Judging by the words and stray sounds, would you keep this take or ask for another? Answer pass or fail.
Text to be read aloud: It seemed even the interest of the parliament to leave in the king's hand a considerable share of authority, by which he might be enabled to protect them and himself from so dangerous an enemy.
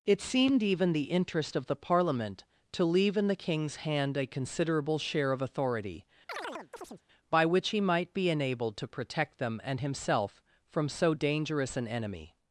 fail